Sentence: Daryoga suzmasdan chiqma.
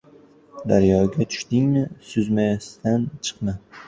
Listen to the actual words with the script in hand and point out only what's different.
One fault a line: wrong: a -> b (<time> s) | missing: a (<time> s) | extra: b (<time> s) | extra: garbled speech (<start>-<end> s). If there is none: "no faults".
extra: tushdingmi (1.3 s)